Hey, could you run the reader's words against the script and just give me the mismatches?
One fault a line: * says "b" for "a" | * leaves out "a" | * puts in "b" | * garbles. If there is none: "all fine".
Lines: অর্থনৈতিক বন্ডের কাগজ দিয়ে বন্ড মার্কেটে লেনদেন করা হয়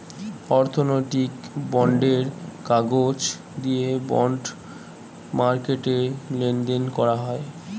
all fine